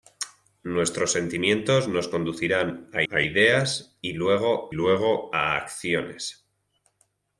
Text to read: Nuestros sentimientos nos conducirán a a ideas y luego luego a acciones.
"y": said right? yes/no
yes